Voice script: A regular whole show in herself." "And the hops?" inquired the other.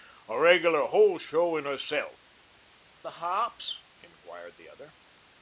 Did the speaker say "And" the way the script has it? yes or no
no